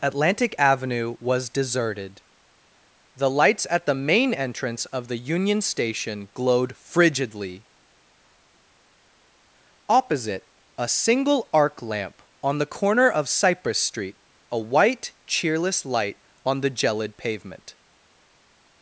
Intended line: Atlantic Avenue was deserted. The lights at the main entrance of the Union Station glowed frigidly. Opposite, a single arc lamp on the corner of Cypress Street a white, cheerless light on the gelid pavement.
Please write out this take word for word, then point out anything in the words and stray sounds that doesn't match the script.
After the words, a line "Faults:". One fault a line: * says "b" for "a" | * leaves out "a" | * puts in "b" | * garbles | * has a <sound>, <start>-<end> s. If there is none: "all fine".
Atlantic Avenue was deserted. The lights at the main entrance of the Union Station glowed frigidly. Opposite, a single arc lamp on the corner of Cypress Street a white, cheerless light on the gelid pavement.
Faults:
all fine